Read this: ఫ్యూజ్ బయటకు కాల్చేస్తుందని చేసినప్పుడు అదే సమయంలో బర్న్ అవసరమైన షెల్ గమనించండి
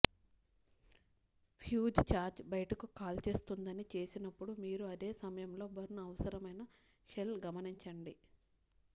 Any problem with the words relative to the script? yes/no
yes